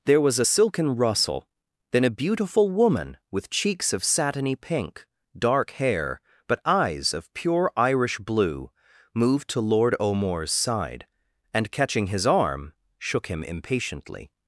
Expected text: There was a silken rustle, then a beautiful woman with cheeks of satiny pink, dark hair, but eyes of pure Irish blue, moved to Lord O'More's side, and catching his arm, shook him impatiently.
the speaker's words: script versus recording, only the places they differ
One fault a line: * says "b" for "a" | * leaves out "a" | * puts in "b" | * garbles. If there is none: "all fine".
all fine